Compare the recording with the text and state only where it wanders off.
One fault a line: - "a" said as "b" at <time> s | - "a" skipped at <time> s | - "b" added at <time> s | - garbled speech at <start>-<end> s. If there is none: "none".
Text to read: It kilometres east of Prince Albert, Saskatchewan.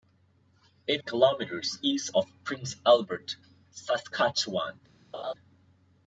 none